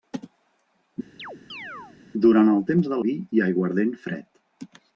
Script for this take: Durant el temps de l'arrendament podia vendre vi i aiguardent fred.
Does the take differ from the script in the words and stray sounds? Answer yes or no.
yes